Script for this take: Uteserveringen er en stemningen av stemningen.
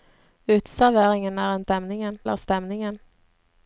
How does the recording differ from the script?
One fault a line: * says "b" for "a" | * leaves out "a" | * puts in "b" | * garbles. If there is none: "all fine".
all fine